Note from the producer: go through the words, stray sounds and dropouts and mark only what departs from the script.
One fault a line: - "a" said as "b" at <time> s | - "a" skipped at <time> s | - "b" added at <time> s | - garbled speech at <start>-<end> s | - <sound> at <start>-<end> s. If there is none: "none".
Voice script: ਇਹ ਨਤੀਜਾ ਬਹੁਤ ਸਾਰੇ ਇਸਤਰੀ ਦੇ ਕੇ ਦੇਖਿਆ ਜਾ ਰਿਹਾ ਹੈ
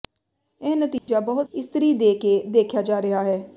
- dropout at 1.0-1.1 s
- "ਸਾਰੇ" skipped at 1.5 s